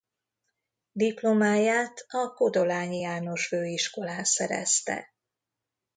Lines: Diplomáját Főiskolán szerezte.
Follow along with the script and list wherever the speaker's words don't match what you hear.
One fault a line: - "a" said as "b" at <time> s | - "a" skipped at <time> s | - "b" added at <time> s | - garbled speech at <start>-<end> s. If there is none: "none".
- "a Kodolányi János" added at 2.1 s